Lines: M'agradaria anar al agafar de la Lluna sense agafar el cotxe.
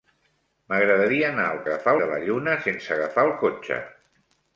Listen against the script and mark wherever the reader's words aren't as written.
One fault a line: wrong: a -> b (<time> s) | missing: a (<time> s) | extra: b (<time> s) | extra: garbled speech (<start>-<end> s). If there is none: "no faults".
no faults